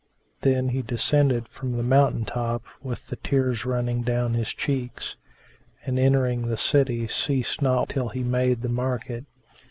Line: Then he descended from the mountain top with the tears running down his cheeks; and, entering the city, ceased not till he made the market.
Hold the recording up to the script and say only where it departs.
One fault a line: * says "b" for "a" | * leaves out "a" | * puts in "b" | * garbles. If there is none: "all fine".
all fine